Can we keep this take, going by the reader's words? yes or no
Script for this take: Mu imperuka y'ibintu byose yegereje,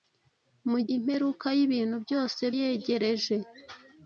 yes